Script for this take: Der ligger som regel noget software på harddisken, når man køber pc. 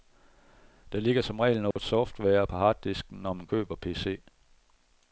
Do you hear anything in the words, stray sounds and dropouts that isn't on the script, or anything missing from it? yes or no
yes